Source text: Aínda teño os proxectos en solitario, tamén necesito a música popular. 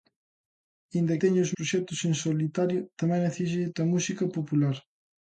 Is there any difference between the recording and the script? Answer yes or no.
no